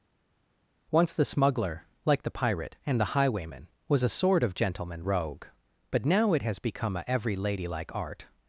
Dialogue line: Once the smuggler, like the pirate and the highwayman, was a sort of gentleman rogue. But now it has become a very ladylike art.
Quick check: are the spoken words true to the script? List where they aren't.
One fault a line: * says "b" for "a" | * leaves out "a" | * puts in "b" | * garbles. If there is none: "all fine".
* says "every" for "very"